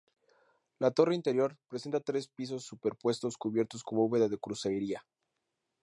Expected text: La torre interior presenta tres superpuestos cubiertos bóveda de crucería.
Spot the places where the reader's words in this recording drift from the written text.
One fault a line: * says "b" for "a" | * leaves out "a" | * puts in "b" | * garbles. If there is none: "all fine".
* puts in "pisos"
* puts in "con"